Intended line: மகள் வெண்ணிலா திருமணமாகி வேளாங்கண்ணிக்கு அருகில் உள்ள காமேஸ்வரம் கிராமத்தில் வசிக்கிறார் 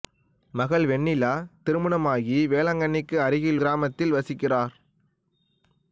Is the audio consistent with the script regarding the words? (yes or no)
no